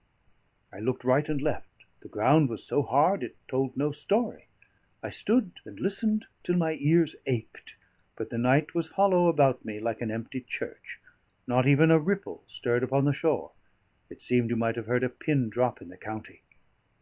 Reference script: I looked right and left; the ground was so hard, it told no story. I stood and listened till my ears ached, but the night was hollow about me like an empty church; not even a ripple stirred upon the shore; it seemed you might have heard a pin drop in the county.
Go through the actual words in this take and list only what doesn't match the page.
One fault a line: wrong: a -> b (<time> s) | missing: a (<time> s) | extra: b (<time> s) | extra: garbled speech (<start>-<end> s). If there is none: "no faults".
no faults